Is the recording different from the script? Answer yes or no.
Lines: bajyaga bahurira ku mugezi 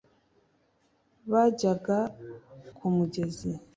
yes